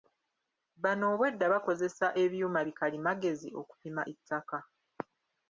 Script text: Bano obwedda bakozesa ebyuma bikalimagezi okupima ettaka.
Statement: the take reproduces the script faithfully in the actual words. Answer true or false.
true